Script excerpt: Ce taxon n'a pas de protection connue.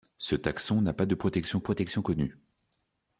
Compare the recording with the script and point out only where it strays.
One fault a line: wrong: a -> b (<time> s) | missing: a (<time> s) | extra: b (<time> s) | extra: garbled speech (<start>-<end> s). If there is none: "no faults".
extra: protection (1.6 s)